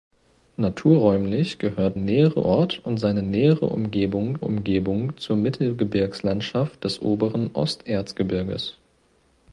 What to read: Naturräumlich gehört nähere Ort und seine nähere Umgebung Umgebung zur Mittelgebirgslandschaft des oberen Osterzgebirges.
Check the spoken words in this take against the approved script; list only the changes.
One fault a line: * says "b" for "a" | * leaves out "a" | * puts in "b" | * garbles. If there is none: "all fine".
all fine